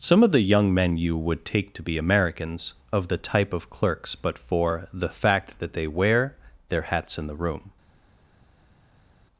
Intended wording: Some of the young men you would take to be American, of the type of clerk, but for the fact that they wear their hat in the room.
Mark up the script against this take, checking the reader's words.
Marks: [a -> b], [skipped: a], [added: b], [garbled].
Some of the young men you would take to be [American, -> Americans] of the type of [clerk, -> clerks] but for the fact that they wear their [hat -> hats] in the room.